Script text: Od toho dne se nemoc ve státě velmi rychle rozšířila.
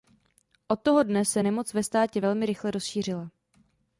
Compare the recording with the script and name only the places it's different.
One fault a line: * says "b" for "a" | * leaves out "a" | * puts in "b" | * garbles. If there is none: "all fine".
all fine